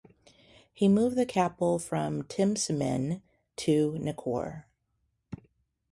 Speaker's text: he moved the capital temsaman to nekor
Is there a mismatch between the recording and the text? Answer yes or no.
yes